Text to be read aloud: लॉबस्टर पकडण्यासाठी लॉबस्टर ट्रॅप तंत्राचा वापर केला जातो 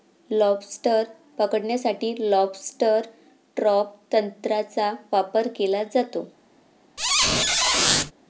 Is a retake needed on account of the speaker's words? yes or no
no